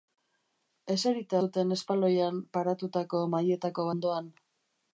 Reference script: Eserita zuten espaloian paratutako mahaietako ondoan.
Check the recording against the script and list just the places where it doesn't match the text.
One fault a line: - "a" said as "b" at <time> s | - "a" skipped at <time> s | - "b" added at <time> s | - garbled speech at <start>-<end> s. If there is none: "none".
none